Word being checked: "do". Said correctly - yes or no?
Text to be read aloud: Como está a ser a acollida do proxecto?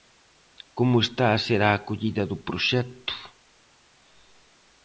yes